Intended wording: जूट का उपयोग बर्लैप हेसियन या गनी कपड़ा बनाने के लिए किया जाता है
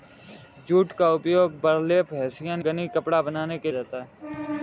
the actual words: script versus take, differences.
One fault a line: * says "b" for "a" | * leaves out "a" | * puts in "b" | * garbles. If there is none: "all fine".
* leaves out "या"
* leaves out "लिए किया"